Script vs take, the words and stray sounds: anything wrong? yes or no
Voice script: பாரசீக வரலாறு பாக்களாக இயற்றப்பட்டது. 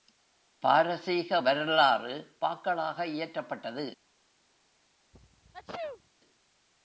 yes